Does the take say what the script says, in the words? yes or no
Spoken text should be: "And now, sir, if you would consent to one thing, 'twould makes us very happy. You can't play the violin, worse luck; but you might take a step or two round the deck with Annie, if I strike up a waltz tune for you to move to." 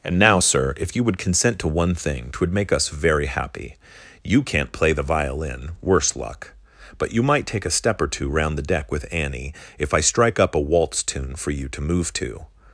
no